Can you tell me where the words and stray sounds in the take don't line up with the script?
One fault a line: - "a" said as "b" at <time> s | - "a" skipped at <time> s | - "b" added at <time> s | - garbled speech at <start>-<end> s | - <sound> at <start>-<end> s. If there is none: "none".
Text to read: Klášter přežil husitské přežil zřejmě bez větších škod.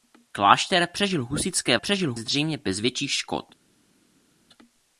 none